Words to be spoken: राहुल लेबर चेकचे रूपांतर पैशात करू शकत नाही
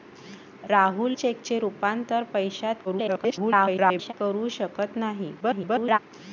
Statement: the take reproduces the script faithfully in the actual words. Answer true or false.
false